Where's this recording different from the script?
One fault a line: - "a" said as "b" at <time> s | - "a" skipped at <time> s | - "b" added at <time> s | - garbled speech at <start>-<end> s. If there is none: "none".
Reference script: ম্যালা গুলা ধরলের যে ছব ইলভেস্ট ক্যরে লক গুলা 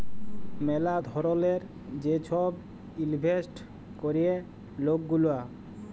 - "গুলা" skipped at 0.9 s